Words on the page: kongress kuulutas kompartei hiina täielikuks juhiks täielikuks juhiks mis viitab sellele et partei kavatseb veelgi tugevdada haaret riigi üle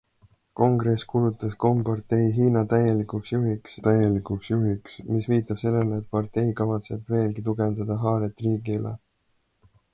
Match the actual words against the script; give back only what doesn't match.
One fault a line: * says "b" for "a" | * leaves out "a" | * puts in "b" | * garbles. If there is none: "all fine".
all fine